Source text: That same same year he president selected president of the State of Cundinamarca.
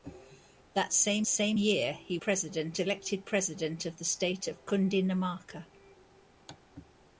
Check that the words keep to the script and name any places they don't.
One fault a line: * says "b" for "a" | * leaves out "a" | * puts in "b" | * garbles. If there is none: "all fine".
all fine